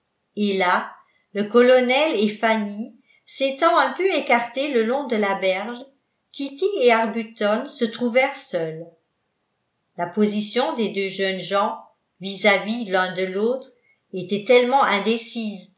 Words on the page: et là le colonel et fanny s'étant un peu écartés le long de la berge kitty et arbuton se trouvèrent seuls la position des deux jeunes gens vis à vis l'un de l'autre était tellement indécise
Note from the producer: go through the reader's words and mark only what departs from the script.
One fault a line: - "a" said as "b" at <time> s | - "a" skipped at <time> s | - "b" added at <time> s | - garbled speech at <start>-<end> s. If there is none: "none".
none